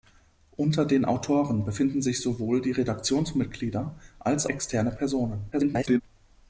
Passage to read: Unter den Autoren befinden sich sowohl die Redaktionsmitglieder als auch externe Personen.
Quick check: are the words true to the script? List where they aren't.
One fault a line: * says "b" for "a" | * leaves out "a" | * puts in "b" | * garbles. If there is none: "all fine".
* leaves out "auch"
* garbles